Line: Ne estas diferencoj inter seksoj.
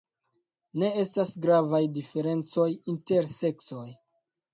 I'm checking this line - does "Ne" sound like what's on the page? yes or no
yes